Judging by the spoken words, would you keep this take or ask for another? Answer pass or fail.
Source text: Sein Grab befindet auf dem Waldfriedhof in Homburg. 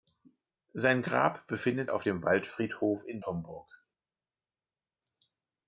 pass